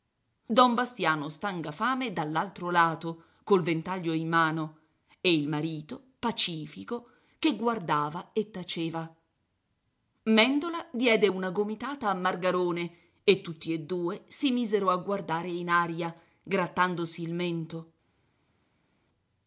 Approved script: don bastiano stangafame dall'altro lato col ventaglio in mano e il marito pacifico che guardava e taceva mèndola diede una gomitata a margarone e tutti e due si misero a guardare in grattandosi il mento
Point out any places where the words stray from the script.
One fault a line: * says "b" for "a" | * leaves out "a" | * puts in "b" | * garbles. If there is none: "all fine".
* puts in "aria"